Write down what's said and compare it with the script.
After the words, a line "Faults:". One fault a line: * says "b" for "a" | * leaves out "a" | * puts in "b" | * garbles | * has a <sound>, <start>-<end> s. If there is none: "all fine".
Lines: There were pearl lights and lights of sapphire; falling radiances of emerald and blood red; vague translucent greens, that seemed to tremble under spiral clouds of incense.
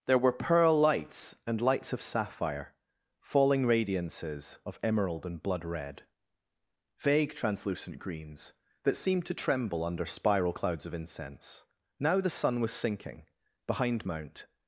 There were pearl lights and lights of sapphire; falling radiances of emerald and blood red; vague translucent greens, that seemed to tremble under spiral clouds of incense. Now the sun was sinking behind Mount
Faults:
* puts in "Now the sun was sinking behind Mount"